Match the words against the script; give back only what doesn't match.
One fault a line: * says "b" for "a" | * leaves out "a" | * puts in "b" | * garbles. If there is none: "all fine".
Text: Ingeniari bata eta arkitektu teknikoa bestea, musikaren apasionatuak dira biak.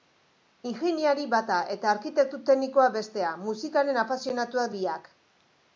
* leaves out "dira"